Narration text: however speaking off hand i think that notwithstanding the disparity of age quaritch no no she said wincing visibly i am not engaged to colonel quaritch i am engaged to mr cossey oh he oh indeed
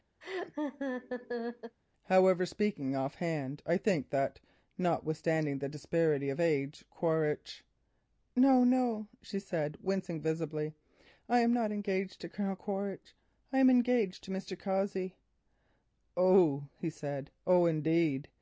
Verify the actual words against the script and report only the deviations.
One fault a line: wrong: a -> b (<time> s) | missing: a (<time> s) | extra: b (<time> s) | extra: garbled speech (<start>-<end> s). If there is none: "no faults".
extra: said (16.9 s)